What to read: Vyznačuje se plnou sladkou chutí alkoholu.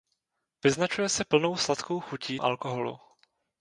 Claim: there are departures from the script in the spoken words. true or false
false